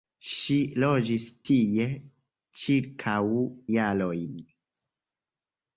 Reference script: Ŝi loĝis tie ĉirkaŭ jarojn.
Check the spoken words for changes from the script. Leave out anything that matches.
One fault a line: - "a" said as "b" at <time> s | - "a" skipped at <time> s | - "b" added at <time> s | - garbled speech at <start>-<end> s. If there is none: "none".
none